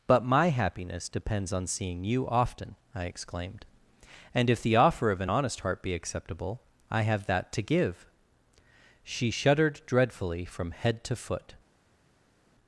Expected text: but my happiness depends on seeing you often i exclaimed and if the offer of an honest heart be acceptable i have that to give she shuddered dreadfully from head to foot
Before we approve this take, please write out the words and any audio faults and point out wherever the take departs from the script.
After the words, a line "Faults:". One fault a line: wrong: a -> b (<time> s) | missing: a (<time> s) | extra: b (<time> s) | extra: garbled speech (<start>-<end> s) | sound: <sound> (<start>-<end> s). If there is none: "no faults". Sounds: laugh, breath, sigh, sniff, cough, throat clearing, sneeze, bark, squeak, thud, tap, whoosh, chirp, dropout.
but my happiness depends on seeing you often i exclaimed and if the offer of an honest heart be acceptable i have that to give she shuddered dreadfully from head to foot
Faults:
no faults